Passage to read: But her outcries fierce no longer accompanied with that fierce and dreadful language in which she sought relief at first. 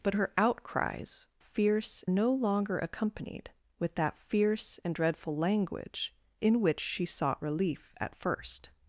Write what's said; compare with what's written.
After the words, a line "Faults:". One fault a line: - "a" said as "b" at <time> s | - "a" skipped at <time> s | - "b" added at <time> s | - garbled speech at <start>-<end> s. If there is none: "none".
But her outcries fierce no longer accompanied with that fierce and dreadful language in which she sought relief at first.
Faults:
none